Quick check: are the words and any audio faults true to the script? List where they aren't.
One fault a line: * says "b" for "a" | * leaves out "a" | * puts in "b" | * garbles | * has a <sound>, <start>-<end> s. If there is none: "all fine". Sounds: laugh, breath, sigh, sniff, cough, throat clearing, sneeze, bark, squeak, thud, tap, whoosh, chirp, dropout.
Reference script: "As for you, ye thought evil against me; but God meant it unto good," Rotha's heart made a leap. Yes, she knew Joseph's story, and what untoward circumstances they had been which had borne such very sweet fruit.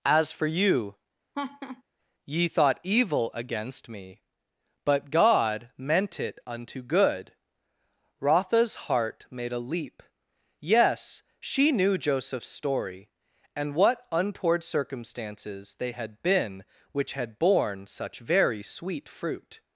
* has a laugh, 1.3-1.8 s